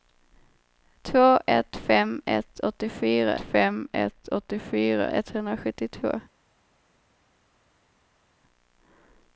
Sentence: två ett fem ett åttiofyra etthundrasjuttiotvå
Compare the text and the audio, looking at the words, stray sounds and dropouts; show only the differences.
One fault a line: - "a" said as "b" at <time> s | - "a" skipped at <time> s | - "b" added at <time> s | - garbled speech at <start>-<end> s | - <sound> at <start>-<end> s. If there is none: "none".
- "fem ett åttiofyra" added at 3.4 s